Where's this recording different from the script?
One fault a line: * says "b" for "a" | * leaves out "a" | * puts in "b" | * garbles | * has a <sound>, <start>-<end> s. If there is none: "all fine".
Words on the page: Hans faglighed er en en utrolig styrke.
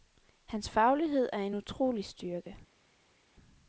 * leaves out "en"